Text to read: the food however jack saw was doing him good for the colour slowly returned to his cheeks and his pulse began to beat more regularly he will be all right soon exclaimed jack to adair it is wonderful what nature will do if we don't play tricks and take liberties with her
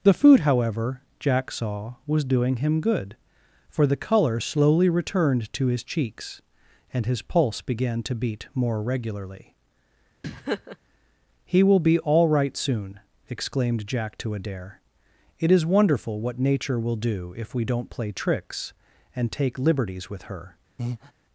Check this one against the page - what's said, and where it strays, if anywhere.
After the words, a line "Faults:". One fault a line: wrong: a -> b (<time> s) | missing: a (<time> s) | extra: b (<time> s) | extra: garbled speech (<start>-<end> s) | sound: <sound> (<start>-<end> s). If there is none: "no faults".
the food however jack saw was doing him good for the colour slowly returned to his cheeks and his pulse began to beat more regularly he will be all right soon exclaimed jack to adair it is wonderful what nature will do if we don't play tricks and take liberties with her
Faults:
sound: laugh (10.2-10.8 s)
sound: breath (20.8-21.1 s)